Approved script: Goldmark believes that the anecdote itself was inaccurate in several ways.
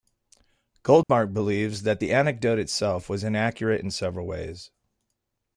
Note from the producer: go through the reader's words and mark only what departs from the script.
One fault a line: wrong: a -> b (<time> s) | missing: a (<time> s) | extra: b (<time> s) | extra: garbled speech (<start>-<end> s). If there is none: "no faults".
no faults